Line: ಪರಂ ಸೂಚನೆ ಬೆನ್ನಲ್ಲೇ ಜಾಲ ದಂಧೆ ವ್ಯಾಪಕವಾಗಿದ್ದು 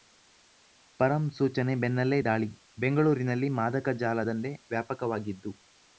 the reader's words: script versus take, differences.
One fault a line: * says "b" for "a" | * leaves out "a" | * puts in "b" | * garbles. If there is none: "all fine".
* puts in "ದಾಳಿ ಬೆಂಗಳೂರಿನಲ್ಲಿ ಮಾದಕ"